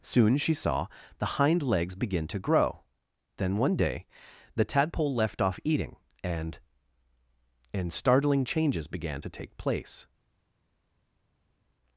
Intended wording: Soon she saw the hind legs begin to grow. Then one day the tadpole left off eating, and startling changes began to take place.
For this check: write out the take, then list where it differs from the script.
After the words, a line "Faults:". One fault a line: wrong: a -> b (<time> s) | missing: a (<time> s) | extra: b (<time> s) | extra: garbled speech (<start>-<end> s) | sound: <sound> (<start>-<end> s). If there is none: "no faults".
Soon she saw the hind legs begin to grow. Then one day the tadpole left off eating, and and startling changes began to take place.
Faults:
extra: and (7.7 s)